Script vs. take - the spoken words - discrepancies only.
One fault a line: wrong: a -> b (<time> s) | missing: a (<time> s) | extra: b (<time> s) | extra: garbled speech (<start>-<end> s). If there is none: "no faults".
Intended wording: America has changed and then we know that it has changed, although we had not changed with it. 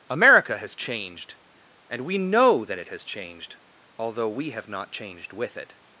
missing: then (2.0 s)
wrong: had -> have (4.5 s)